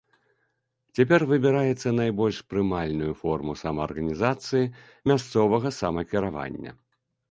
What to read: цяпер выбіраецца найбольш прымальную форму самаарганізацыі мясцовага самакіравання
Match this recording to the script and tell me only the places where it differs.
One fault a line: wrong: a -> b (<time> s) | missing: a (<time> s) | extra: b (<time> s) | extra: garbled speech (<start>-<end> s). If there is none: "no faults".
no faults